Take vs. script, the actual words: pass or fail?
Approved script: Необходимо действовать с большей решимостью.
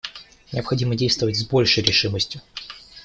pass